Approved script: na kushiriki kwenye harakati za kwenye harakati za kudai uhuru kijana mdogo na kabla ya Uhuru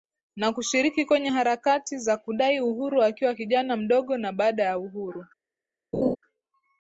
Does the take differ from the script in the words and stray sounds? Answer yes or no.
yes